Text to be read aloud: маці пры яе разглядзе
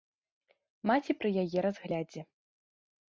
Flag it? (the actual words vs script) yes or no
no